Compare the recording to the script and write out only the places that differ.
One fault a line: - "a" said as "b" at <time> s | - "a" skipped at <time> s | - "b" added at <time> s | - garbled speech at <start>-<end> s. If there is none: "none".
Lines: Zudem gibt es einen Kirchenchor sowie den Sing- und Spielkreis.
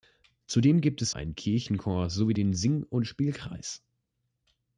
none